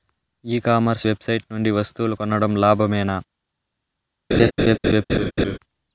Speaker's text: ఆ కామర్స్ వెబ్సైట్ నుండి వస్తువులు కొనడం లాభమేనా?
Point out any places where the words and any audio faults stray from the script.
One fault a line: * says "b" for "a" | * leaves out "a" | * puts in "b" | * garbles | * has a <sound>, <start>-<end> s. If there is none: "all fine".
* says "ఈ" for "ఆ"
* has a laugh, 4.3-5.6 s